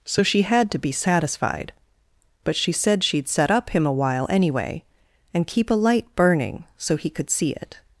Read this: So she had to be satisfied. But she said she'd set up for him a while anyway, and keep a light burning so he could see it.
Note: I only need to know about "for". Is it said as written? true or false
false